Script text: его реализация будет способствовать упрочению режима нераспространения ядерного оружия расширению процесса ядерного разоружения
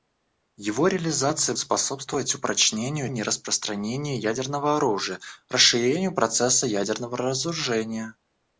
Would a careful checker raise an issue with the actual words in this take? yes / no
yes